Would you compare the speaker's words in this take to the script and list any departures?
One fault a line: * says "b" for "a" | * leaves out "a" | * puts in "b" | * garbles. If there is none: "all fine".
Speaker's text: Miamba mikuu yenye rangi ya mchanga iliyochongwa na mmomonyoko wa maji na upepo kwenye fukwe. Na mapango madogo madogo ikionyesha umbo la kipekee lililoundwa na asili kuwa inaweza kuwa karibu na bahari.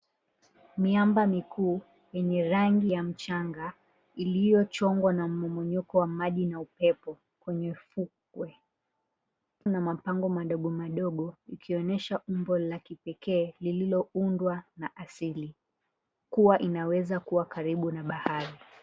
all fine